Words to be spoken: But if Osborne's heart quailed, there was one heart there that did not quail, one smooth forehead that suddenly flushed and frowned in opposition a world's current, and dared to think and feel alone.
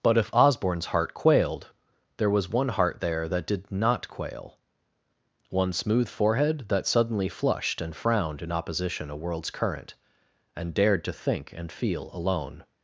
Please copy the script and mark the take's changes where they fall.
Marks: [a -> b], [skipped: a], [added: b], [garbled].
But if Osborne's heart quailed, there was one heart there that did not quail, one smooth forehead that suddenly flushed and frowned in opposition a world's current, and dared to think and feel alone.